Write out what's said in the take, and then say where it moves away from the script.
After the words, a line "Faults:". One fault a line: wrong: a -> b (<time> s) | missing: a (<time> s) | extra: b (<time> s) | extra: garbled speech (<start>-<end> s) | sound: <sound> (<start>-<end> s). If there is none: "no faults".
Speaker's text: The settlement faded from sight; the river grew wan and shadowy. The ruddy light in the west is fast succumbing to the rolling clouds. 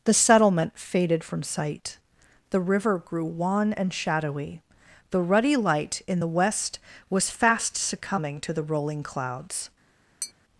The settlement faded from sight; the river grew wan and shadowy. The ruddy light in the west was fast succumbing to the rolling clouds.
Faults:
wrong: is -> was (7.1 s)
sound: tap (10.2-10.3 s)